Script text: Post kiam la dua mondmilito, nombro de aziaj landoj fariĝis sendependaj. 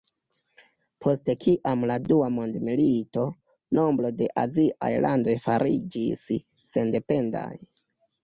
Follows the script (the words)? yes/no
yes